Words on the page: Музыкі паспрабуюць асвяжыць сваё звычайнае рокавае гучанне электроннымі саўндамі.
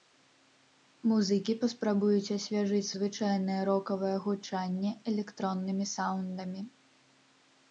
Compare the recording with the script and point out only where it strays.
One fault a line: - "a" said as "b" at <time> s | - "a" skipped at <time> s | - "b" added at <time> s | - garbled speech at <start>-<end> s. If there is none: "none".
- "сваё" skipped at 2.9 s